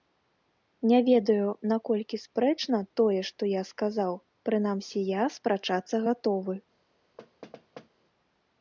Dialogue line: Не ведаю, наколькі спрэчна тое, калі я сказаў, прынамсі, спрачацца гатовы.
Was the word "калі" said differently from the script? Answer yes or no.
yes